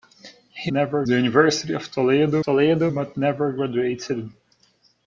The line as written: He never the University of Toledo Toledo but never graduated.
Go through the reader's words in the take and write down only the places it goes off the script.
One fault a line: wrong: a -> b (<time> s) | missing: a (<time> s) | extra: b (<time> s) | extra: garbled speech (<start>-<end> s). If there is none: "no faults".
no faults